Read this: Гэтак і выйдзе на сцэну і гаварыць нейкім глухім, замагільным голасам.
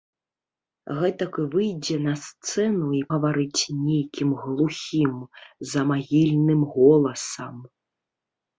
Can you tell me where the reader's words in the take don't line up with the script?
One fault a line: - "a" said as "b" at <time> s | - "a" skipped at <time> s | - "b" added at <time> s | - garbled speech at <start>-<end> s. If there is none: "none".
none